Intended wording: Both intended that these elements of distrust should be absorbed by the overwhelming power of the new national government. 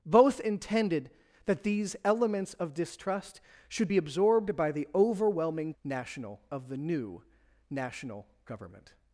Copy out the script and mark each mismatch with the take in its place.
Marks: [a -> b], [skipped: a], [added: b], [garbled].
Both intended that these elements of distrust should be absorbed by the overwhelming [power -> national] of the new national government.